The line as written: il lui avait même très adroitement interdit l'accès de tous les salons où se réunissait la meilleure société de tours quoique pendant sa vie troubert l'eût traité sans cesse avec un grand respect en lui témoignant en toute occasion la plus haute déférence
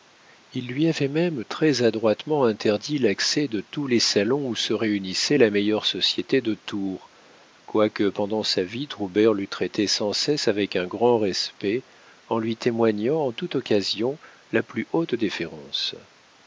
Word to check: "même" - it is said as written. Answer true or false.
true